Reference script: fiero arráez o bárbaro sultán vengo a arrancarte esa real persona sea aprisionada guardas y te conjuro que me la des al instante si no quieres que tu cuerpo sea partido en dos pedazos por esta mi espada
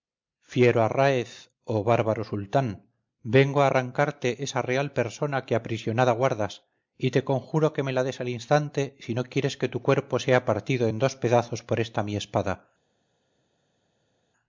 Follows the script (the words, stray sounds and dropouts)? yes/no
no